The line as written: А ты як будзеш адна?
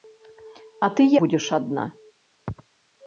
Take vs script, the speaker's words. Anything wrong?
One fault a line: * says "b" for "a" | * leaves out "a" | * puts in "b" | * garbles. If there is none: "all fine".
* leaves out "як"